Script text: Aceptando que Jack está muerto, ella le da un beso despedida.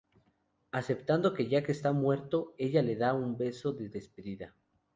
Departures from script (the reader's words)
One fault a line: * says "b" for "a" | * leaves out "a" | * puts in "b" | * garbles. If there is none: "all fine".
* puts in "de"